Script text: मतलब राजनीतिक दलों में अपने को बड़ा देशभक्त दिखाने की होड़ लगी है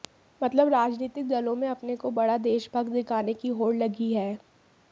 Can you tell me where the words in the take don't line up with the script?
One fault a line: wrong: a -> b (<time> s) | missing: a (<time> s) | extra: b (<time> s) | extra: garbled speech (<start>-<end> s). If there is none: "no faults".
no faults